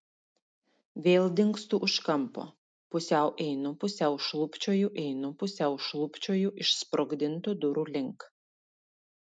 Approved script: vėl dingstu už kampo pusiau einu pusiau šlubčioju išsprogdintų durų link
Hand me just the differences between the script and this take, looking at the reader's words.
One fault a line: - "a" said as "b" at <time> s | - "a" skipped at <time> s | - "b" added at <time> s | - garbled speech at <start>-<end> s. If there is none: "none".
- "einu pusiau šlubčioju" added at 5.0 s